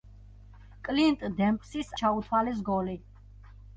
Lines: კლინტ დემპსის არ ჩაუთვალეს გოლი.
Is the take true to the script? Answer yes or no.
no